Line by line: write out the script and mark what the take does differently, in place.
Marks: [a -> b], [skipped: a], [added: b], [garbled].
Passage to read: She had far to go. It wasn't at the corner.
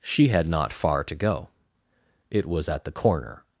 She had [added: not] far to go. It [wasn't -> was] at the corner.